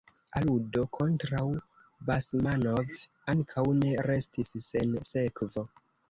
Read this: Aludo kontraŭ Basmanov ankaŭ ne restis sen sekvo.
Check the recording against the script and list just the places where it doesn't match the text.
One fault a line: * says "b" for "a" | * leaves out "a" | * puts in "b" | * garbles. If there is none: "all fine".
all fine